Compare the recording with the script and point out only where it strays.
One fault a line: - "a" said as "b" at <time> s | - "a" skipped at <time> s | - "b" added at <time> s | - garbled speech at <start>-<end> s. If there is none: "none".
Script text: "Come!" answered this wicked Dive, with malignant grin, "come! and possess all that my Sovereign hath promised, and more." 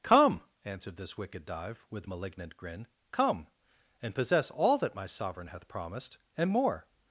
none